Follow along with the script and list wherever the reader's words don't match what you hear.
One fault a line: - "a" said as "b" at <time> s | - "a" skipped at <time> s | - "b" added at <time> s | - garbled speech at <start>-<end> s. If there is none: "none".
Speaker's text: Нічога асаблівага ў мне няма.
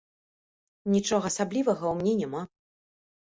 none